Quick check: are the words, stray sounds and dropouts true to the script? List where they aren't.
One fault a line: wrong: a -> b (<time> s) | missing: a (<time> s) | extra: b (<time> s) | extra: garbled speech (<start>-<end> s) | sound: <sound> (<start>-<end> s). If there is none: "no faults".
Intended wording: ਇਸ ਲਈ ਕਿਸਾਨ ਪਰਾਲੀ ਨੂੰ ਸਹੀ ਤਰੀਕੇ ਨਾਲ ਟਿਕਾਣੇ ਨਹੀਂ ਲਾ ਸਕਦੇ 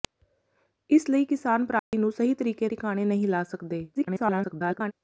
sound: dropout (1.8-1.9 s)
missing: ਨਾਲ (2.7 s)
extra: garbled speech (3.9-4.9 s)